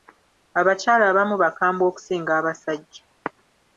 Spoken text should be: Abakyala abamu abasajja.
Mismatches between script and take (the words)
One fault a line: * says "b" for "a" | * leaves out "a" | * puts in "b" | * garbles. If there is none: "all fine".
* puts in "bakambwe okusinga"